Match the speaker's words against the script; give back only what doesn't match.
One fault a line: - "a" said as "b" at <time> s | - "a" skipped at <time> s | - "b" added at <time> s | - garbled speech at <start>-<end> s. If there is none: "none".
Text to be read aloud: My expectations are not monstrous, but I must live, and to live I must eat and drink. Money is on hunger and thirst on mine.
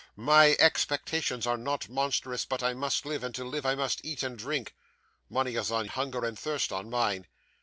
none